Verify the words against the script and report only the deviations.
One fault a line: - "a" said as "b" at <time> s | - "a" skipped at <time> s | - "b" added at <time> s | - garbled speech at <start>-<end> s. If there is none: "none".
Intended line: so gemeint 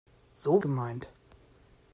none